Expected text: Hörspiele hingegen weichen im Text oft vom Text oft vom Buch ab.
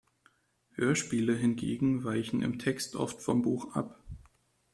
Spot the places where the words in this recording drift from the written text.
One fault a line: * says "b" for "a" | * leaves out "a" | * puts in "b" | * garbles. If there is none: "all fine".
* leaves out "Text oft vom"